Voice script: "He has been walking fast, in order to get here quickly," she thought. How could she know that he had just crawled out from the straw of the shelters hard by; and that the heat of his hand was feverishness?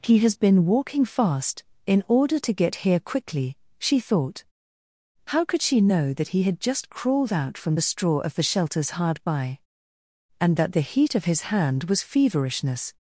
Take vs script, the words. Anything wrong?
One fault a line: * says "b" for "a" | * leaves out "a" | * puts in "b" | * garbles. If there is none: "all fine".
all fine